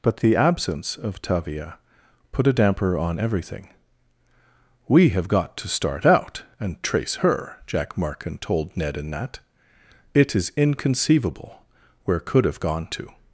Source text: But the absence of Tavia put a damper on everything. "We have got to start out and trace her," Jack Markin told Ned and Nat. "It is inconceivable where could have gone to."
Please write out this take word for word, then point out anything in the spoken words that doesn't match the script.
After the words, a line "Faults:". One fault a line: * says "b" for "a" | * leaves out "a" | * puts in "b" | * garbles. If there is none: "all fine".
But the absence of Tavia put a damper on everything. "We have got to start out and trace her," Jack Markin told Ned and Nat. "It is inconceivable where could have gone to."
Faults:
all fine